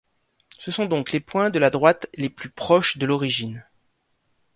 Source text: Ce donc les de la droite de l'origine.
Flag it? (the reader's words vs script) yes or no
yes